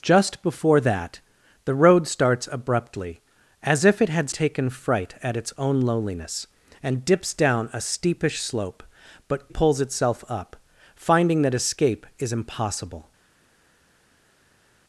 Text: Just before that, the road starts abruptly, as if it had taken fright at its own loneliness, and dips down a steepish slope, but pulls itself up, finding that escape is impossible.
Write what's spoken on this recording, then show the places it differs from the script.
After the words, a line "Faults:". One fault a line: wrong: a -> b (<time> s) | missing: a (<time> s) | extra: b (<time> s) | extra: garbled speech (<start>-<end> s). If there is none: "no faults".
Just before that, the road starts abruptly, as if it had taken fright at its own loneliness, and dips down a steepish slope, but pulls itself up, finding that escape is impossible.
Faults:
no faults